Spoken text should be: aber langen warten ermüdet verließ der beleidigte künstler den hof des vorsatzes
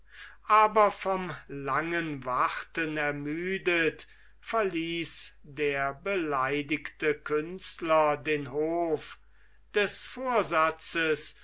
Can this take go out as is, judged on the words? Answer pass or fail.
fail